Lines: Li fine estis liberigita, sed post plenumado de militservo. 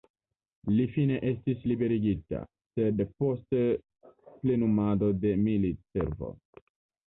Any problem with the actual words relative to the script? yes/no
no